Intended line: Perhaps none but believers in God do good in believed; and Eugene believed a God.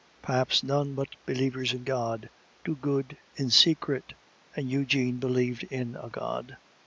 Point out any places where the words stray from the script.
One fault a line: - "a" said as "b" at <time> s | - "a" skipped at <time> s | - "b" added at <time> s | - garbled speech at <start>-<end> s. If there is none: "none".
- "believed" said as "secret" at 3.5 s
- "in" added at 5.6 s